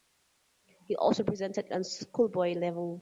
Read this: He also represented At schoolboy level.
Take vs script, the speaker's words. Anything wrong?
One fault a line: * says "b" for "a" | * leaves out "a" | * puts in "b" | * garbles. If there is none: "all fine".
all fine